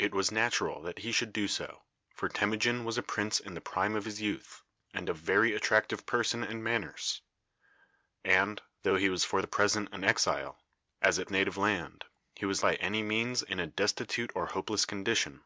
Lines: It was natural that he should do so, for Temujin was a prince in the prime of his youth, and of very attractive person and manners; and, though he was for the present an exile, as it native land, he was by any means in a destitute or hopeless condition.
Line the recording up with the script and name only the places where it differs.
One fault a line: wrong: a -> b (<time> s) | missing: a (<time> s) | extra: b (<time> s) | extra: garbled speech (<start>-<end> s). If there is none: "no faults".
no faults